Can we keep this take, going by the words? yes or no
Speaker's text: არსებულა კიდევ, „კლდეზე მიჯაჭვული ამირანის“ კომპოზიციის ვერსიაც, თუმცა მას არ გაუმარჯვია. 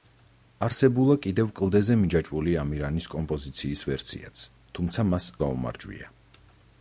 no